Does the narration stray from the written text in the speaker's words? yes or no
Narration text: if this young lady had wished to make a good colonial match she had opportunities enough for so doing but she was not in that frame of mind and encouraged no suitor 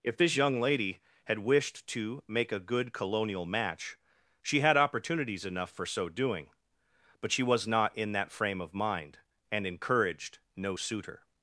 no